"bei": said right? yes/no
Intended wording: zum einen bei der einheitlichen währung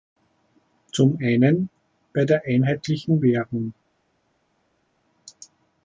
yes